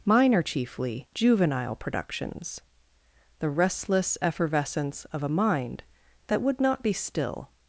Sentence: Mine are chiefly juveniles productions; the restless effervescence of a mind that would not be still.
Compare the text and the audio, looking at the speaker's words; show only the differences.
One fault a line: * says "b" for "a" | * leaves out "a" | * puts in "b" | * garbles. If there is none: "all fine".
* says "juvenile" for "juveniles"